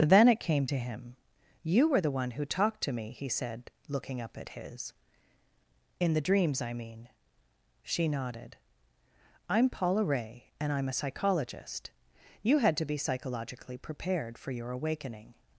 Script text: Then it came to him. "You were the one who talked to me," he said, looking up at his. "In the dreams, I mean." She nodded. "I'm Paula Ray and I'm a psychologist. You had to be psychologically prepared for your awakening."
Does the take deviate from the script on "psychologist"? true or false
false